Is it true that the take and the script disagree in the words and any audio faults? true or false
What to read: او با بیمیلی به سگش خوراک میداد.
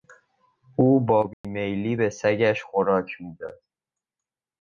true